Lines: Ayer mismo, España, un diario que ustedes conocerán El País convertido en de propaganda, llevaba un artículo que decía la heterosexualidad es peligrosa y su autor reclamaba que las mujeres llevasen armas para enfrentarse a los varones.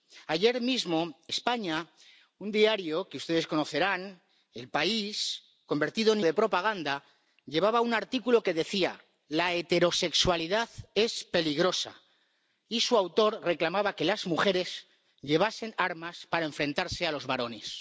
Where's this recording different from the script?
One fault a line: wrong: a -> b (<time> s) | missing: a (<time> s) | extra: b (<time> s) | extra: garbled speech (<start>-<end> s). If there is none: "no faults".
no faults